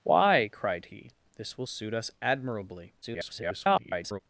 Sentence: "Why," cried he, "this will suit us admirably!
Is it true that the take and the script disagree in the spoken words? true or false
true